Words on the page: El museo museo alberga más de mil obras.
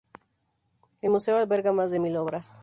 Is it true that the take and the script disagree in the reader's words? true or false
true